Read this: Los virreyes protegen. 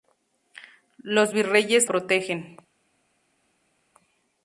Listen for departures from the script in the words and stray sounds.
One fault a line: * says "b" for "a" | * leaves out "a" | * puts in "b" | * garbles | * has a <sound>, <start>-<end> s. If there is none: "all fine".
all fine